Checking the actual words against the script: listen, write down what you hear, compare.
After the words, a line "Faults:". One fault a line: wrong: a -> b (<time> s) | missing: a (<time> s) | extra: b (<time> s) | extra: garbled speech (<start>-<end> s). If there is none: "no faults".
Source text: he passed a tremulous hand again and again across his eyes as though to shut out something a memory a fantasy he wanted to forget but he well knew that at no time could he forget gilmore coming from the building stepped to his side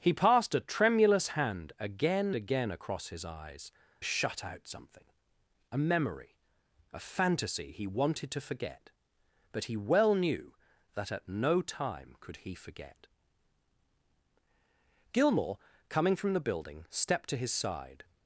he passed a tremulous hand again again across his eyes shut out something a memory a fantasy he wanted to forget but he well knew that at no time could he forget gilmore coming from the building stepped to his side
Faults:
missing: and (2.4 s)
missing: as though to (3.7 s)